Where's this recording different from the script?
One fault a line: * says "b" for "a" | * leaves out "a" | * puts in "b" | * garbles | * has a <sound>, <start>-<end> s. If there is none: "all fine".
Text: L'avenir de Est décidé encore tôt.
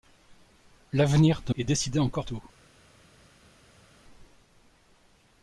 all fine